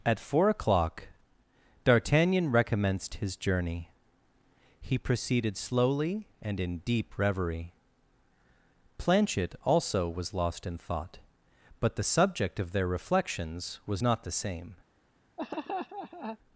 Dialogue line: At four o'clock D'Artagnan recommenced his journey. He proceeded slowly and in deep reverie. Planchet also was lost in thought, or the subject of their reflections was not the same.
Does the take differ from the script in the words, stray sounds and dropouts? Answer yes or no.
yes